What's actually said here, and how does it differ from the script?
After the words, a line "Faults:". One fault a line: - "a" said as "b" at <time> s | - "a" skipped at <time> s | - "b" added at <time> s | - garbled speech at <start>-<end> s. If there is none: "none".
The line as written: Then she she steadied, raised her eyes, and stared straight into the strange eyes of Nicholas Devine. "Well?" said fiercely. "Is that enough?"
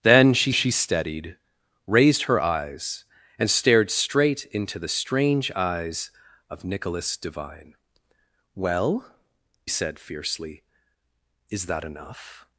Then she she steadied, raised her eyes, and stared straight into the strange eyes of Nicholas Devine. "Well?" said fiercely. "Is that enough?"
Faults:
none